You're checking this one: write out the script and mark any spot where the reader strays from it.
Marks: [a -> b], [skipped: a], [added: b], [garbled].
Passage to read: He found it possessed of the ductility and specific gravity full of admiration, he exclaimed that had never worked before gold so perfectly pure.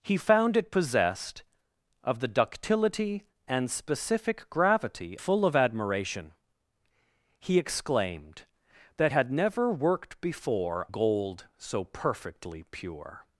He found it possessed of the ductility and specific gravity full of admiration, he exclaimed that had never worked before gold so perfectly pure.